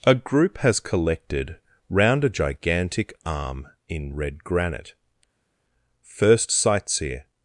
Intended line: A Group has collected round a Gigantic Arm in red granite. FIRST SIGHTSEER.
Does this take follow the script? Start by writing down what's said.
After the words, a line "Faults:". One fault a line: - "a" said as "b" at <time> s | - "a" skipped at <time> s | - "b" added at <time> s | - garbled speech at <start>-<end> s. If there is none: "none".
A Group has collected round a Gigantic Arm in red granite. FIRST SIGHTSEER.
Faults:
none